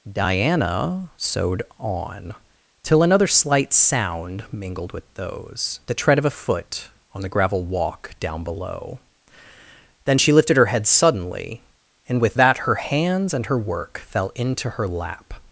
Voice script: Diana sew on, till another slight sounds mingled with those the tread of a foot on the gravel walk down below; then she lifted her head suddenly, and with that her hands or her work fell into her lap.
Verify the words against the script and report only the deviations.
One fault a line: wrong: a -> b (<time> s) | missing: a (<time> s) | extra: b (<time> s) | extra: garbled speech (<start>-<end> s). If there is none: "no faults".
wrong: sew -> sewed (1.2 s)
wrong: sounds -> sound (3.7 s)
wrong: or -> and (13.3 s)